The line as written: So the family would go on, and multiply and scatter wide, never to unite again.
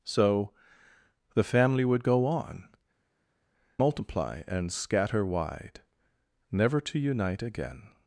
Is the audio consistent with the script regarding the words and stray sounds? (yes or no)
no